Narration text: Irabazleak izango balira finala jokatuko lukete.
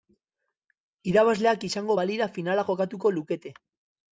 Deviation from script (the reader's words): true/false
false